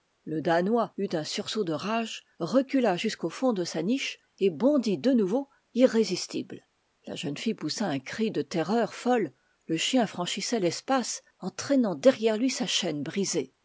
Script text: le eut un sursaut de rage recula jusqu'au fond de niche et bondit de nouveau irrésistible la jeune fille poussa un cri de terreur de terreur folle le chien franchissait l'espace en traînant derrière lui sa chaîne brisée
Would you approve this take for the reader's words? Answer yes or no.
no